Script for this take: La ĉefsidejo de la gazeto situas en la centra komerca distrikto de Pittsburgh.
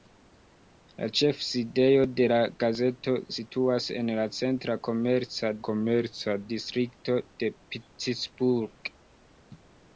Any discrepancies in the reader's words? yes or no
yes